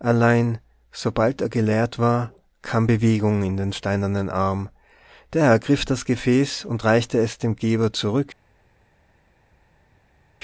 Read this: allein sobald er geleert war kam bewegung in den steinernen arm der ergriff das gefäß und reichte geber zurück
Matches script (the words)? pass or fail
fail